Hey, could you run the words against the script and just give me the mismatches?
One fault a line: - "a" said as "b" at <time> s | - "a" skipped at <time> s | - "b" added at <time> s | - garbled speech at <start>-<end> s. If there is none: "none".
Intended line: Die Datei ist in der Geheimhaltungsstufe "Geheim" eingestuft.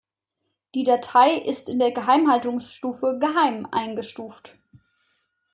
none